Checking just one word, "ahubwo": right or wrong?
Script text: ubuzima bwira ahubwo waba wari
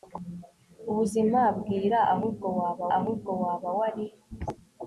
right